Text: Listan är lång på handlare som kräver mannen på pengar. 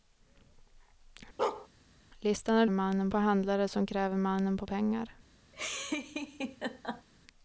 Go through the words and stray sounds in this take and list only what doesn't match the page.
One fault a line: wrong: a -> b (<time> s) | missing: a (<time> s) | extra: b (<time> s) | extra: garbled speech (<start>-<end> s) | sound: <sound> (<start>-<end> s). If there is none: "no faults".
sound: bark (1.4-1.7 s)
wrong: lång -> mannen (2.7 s)
sound: laugh (5.5-7.1 s)